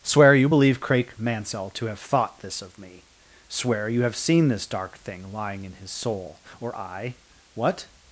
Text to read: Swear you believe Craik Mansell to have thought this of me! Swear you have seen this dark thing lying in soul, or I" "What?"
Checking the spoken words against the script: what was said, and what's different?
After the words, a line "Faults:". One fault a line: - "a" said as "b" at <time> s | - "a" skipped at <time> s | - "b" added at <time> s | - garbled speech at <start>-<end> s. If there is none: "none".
Swear you believe Craik Mansell to have thought this of me! Swear you have seen this dark thing lying in his soul, or I" "What?"
Faults:
- "his" added at 5.7 s